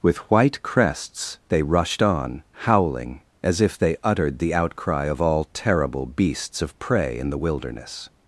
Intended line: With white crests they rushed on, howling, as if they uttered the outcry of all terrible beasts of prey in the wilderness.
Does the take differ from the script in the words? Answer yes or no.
no